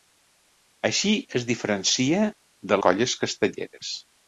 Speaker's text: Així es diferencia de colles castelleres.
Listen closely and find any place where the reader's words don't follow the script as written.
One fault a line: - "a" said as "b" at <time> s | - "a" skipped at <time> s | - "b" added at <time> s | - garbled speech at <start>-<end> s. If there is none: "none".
none